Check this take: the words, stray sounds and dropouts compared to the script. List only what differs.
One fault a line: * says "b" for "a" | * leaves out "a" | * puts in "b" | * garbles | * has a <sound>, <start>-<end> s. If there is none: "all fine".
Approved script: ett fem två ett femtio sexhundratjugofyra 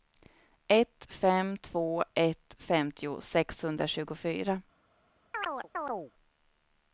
* has a chirp, 5.3-6.1 s